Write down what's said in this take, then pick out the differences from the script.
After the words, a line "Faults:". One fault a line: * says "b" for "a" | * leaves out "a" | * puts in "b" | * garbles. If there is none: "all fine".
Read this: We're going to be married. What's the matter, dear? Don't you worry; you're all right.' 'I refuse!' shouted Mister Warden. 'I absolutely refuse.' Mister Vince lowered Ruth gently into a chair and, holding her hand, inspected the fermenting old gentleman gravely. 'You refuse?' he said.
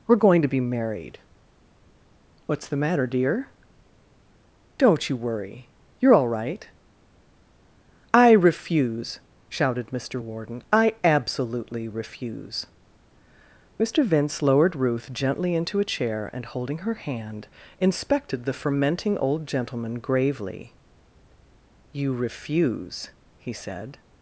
We're going to be married. What's the matter, dear? Don't you worry; you're all right.' 'I refuse!' shouted Mister Warden. 'I absolutely refuse.' Mister Vince lowered Ruth gently into a chair and, holding her hand, inspected the fermenting old gentleman gravely. 'You refuse?' he said.
Faults:
all fine